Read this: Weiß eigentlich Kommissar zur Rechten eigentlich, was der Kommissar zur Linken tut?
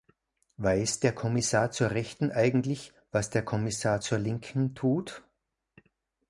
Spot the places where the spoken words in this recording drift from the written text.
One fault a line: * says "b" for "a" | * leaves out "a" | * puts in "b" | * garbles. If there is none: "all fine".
* says "der" for "eigentlich"